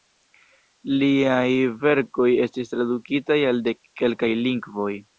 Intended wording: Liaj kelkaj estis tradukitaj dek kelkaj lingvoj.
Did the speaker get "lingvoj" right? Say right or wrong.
right